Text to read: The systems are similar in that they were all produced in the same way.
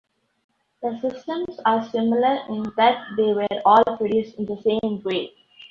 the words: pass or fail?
pass